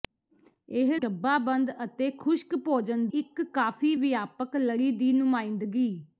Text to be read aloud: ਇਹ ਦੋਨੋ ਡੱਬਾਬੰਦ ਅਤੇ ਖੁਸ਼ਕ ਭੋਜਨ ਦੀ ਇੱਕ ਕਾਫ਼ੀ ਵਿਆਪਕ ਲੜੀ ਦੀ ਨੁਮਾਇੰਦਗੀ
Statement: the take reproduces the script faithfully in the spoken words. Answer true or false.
false